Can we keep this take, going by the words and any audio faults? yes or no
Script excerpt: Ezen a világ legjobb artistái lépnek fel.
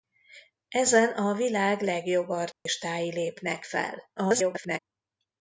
no